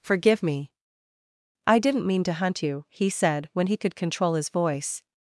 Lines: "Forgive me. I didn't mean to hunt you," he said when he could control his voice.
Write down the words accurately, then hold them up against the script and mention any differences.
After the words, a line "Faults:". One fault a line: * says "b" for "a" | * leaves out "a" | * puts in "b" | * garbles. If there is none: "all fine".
"Forgive me. I didn't mean to hunt you," he said when he could control his voice.
Faults:
all fine